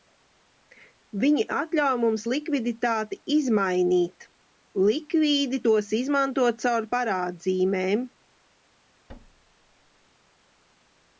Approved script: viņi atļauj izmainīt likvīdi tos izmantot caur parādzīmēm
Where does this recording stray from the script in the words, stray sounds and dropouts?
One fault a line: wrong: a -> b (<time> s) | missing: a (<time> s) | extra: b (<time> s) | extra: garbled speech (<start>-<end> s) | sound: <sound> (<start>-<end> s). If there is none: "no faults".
extra: mums likviditāti (2.0 s)
sound: thud (9.1-10.1 s)